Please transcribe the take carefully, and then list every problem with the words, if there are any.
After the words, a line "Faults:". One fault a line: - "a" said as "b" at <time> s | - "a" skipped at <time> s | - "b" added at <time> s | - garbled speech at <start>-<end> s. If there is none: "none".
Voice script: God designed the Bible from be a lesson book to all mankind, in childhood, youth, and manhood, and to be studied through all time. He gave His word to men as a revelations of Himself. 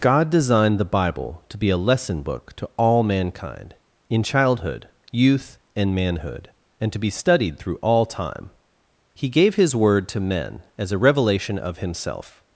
God designed the Bible to be a lesson book to all mankind, in childhood, youth, and manhood, and to be studied through all time. He gave His word to men as a revelation of Himself.
Faults:
- "from" said as "to" at 1.5 s
- "revelations" said as "revelation" at 11.0 s